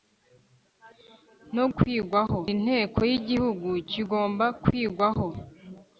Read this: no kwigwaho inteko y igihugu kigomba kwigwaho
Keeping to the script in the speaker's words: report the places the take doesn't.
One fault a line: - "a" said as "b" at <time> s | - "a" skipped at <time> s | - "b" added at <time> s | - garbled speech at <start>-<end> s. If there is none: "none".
none